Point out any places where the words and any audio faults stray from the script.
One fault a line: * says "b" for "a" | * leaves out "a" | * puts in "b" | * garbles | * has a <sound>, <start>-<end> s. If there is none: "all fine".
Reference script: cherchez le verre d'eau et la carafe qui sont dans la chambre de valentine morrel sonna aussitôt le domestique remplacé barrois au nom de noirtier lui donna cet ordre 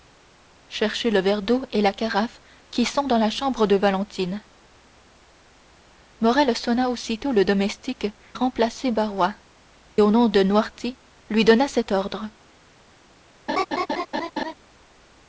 * has a laugh, 13.5-14.5 s